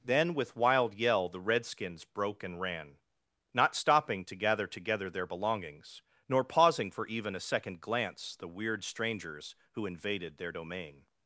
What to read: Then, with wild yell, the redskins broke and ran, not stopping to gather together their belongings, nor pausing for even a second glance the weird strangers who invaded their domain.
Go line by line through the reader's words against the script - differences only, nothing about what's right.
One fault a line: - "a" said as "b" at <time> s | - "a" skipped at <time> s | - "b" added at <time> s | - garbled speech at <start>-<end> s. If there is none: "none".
none